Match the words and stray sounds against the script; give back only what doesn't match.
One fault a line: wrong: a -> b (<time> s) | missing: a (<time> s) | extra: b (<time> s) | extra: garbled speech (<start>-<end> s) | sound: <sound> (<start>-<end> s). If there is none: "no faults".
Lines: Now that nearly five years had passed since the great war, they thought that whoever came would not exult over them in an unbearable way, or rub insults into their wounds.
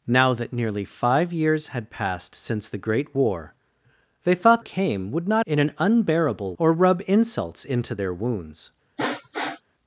missing: that whoever (4.6 s)
missing: exult over them (5.5 s)
missing: way (6.5 s)
sound: sniff (9.0-9.6 s)